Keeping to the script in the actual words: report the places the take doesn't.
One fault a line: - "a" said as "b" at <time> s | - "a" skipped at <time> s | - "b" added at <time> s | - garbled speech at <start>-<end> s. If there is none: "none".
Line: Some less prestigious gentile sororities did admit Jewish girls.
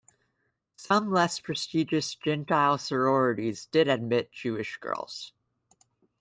none